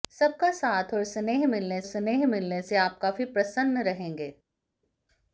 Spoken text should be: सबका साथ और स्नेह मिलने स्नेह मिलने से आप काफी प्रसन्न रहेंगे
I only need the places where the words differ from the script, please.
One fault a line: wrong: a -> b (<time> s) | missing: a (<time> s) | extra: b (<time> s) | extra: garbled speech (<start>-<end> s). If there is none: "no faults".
no faults